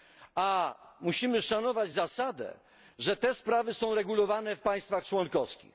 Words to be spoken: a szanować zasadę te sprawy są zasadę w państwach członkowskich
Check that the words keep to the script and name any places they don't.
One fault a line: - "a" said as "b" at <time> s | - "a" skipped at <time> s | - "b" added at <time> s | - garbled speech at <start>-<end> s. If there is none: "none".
- "musimy" added at 1.0 s
- "że" added at 3.0 s
- "zasadę" said as "regulowane" at 3.9 s